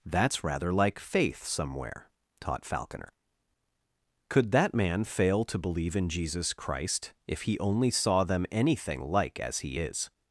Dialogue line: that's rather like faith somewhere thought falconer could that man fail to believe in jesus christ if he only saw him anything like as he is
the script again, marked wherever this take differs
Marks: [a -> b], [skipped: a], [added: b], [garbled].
that's rather like faith somewhere [thought -> taught] falconer could that man fail to believe in jesus christ if he only saw [him -> them] anything like as he is